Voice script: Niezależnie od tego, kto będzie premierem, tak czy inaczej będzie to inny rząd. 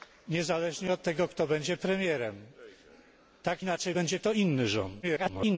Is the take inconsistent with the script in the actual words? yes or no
yes